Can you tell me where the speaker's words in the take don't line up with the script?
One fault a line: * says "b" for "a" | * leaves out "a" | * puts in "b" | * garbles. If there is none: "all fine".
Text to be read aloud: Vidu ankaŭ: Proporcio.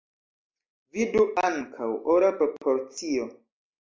* puts in "Ora"